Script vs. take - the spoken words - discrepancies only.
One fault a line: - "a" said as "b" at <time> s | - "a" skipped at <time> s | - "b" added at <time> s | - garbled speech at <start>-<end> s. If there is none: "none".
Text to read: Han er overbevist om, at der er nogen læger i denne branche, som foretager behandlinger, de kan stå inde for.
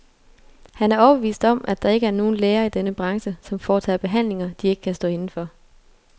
- "ikke" added at 1.9 s
- "ikke" added at 4.7 s